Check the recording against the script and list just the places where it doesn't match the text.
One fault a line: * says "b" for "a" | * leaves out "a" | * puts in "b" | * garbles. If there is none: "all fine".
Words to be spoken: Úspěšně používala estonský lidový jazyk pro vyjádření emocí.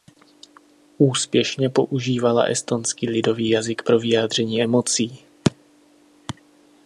all fine